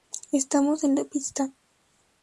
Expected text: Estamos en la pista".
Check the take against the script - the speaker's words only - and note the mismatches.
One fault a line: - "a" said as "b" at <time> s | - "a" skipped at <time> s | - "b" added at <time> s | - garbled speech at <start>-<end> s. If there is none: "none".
none